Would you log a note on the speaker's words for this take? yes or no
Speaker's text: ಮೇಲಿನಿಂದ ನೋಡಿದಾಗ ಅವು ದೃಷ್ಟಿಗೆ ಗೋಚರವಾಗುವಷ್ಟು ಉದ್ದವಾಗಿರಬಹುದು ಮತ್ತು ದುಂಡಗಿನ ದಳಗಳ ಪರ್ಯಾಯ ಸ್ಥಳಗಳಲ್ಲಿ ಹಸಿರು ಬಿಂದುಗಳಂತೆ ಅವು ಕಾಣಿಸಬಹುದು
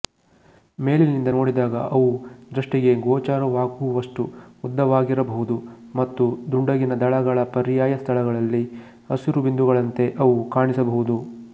no